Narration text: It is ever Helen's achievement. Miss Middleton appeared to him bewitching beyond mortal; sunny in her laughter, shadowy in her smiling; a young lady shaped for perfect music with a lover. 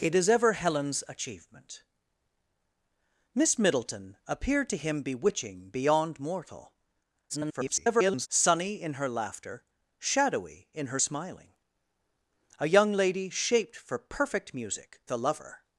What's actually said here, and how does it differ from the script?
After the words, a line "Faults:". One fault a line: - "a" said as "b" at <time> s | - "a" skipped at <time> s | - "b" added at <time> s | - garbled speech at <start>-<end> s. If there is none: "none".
It is ever Helen's achievement. Miss Middleton appeared to him bewitching beyond mortal; [garbled] sunny in her laughter, shadowy in her smiling; a young lady shaped for perfect music a lover.
Faults:
- garbled speech at 7.3-8.3 s
- "with" skipped at 15.0 s